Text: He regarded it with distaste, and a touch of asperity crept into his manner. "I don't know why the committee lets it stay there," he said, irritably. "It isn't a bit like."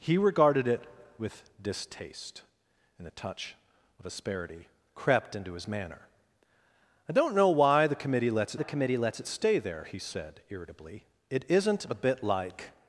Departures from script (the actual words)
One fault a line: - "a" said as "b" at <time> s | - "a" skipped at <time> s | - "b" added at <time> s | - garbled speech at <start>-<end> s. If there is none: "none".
- "the committee lets" added at 8.5 s